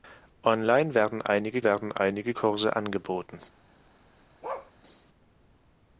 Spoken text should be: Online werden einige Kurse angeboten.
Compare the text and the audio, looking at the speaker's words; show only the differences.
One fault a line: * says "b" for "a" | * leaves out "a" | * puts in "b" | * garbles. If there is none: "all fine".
* puts in "werden einige"